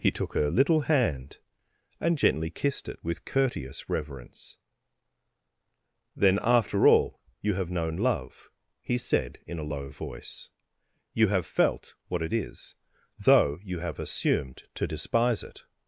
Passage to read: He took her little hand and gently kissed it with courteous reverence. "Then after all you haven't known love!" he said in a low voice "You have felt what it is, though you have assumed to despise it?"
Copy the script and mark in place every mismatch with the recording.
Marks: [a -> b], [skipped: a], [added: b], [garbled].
He took her little hand and gently kissed it with courteous reverence. "Then after all you [haven't -> have] known love!" he said in a low voice "You have felt what it is, though you have assumed to despise it?"